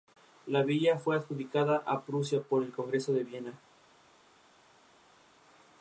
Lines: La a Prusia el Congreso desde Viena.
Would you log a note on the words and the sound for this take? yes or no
yes